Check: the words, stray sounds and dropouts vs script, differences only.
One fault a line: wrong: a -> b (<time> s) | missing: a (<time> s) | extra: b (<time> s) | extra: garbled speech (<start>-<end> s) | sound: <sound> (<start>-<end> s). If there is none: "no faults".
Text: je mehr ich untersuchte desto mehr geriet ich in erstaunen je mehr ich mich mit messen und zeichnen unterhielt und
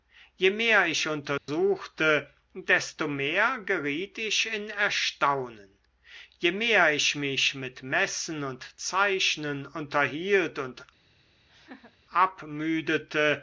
sound: dropout (1.4-1.5 s)
sound: laugh (11.5-12.0 s)